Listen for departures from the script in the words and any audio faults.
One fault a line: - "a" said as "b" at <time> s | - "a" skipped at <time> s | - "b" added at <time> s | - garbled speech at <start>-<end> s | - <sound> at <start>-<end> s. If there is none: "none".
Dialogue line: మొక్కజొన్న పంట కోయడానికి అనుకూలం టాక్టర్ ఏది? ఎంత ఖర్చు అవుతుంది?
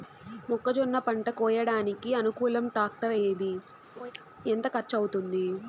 - laugh at 4.0-4.1 s